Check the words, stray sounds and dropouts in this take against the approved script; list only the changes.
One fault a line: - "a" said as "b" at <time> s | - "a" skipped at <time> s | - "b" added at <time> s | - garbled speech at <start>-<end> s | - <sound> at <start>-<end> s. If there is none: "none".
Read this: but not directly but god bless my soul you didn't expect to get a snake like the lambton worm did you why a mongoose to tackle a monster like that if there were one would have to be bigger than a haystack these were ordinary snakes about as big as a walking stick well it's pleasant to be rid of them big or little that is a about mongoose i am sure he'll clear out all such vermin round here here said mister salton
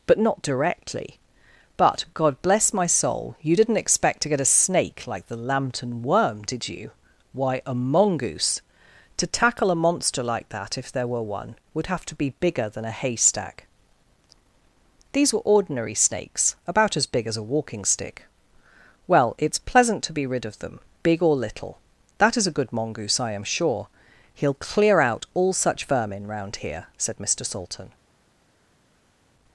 - "about" said as "good" at 22.5 s
- "here" skipped at 26.9 s